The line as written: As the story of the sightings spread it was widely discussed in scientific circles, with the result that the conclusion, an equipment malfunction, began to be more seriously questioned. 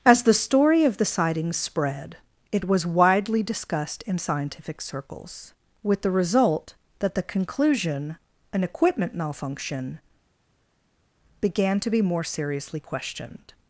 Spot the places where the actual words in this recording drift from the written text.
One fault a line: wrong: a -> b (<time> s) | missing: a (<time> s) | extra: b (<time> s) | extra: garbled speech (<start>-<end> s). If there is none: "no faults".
no faults